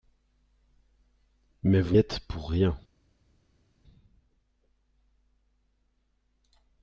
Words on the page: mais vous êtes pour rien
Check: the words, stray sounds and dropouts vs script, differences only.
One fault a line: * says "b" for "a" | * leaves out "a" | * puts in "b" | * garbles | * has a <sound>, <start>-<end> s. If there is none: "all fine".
all fine